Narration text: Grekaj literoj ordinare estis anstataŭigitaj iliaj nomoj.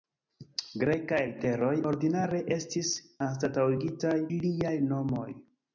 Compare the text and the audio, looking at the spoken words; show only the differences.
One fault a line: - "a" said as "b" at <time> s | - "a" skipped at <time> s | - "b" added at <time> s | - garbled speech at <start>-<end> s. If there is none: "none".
none